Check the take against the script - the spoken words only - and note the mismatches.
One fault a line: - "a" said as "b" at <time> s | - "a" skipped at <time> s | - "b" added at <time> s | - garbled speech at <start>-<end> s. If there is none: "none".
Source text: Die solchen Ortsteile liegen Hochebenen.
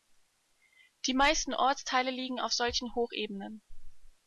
- "solchen" said as "meisten" at 1.1 s
- "auf solchen" added at 2.4 s